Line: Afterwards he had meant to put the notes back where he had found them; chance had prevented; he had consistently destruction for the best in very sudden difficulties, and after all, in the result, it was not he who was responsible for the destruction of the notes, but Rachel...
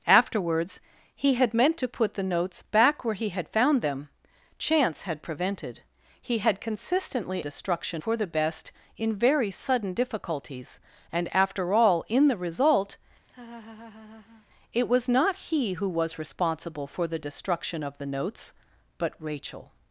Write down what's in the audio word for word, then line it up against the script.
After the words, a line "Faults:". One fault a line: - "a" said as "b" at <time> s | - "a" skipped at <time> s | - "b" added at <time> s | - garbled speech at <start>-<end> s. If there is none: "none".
Afterwards he had meant to put the notes back where he had found them; chance had prevented; he had consistently destruction for the best in very sudden difficulties, and after all, in the result, it was not he who was responsible for the destruction of the notes, but Rachel...
Faults:
none